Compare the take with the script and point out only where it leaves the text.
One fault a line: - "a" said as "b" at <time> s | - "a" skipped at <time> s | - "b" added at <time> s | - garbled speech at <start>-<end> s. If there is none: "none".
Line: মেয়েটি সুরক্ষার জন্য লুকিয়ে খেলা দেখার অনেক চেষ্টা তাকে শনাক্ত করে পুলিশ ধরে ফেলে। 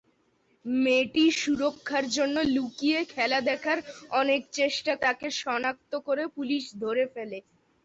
none